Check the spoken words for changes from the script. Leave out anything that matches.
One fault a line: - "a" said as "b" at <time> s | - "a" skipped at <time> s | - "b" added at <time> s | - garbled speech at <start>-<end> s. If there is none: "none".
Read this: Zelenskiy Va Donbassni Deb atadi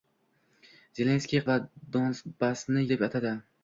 none